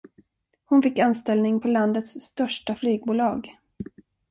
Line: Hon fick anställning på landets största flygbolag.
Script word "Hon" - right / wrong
right